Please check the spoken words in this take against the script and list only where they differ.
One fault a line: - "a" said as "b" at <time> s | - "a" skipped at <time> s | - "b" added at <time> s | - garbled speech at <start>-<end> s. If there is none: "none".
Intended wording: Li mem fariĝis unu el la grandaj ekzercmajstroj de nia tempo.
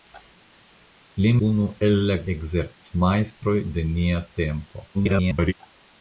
- "mem fariĝis" skipped at 1.3 s
- "grandaj" skipped at 2.2 s
- garbled speech at 4.9-5.5 s